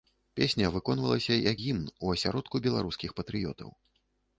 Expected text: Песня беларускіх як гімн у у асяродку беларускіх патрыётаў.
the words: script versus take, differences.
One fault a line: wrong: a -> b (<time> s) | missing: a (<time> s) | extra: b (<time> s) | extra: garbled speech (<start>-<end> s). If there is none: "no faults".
wrong: беларускіх -> выконвалася (0.8 s)
missing: у (2.2 s)